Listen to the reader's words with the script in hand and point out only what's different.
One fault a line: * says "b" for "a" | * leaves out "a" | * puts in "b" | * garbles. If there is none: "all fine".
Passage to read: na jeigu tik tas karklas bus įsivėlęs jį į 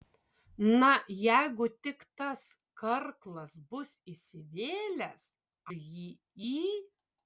all fine